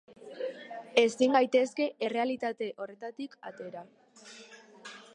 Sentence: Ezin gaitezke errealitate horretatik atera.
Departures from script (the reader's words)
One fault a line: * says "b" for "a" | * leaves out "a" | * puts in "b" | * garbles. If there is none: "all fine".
all fine